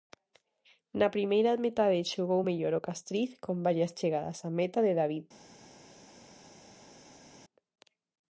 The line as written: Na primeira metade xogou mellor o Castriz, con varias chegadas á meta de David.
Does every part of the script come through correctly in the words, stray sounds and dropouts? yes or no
yes